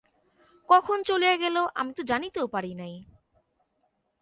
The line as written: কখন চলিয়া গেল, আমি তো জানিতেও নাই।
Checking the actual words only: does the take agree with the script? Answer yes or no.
no